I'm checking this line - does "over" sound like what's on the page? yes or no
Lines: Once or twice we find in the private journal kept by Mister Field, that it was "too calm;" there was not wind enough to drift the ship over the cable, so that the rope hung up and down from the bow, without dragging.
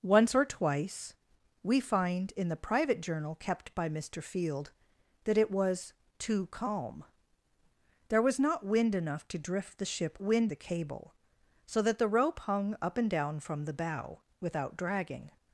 no